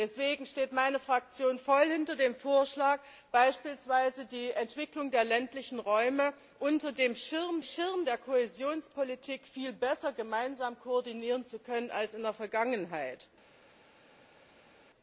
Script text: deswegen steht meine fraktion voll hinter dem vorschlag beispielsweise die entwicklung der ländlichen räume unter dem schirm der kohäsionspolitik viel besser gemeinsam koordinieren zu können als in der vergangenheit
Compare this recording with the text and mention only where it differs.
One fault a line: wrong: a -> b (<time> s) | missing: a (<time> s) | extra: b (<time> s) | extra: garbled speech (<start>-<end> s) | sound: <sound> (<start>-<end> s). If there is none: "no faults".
extra: schirm (7.6 s)